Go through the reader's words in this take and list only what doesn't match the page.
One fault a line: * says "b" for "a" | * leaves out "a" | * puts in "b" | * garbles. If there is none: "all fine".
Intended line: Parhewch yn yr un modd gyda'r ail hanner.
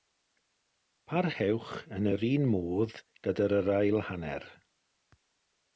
all fine